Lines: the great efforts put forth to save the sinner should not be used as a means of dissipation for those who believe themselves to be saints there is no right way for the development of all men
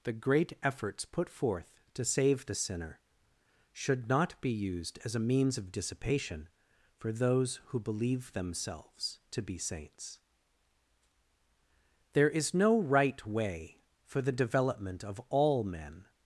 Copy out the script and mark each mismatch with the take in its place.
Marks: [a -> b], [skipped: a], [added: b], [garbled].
the great efforts put forth to save the sinner should not be used as a means of dissipation for those who believe themselves to be saints there is no right way for the development of all men